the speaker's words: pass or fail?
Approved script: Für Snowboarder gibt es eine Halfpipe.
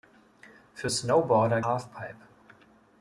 fail